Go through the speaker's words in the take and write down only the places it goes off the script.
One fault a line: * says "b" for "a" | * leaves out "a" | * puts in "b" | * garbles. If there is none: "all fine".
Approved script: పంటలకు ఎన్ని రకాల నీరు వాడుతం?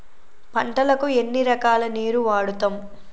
all fine